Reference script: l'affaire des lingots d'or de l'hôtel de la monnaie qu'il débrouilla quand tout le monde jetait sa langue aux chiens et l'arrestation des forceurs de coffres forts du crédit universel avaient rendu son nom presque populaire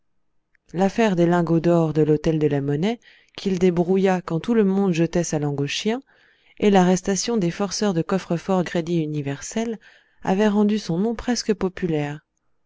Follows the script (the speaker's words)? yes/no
no